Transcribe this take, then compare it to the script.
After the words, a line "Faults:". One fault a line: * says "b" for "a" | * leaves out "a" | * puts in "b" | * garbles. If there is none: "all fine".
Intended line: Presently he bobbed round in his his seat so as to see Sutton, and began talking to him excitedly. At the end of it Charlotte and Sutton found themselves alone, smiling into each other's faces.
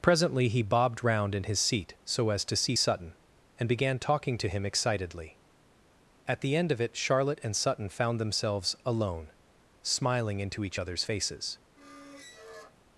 Presently he bobbed round in his seat so as to see Sutton, and began talking to him excitedly. At the end of it Charlotte and Sutton found themselves alone, smiling into each other's faces.
Faults:
* leaves out "his"